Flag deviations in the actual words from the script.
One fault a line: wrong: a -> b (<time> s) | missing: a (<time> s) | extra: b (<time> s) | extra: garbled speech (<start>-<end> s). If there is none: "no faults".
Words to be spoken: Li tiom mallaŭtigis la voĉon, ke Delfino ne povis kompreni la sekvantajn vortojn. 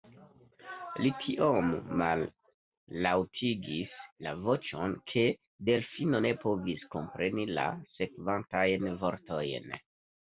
no faults